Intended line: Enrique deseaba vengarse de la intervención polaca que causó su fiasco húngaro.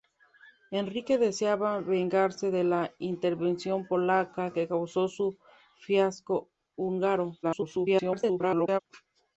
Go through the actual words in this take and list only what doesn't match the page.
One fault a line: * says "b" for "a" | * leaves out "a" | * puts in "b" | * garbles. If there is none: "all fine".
* garbles